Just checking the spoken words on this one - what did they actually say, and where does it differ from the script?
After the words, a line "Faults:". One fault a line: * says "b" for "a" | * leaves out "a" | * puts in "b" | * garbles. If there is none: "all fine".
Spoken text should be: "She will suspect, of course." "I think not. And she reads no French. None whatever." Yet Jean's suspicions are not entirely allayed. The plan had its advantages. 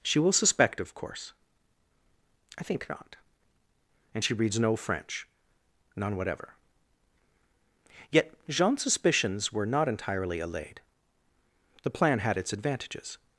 "She will suspect, of course." "I think not. And she reads no French. None whatever." Yet Jean's suspicions were not entirely allayed. The plan had its advantages.
Faults:
* says "were" for "are"